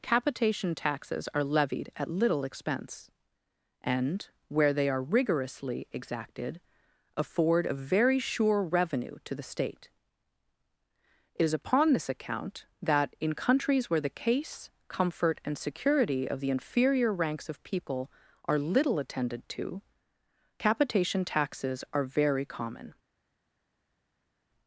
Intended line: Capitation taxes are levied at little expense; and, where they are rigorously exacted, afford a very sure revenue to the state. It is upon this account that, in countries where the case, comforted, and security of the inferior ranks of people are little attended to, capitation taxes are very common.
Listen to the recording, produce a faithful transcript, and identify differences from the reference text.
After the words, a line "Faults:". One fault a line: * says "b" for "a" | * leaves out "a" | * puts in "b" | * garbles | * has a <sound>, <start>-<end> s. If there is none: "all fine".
Capitation taxes are levied at little expense; and, where they are rigorously exacted, afford a very sure revenue to the state. It is upon this account that, in countries where the case, comfort, and security of the inferior ranks of people are little attended to, capitation taxes are very common.
Faults:
* says "comfort" for "comforted"